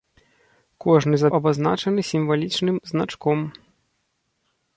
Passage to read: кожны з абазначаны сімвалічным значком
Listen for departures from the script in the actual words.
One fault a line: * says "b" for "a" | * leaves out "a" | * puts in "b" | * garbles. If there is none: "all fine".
all fine